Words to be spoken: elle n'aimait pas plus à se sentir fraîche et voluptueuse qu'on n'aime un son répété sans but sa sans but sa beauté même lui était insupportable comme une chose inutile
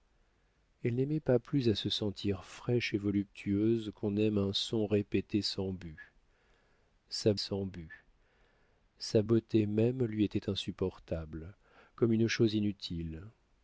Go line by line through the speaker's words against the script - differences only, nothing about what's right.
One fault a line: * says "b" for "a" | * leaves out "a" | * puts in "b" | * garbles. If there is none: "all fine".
all fine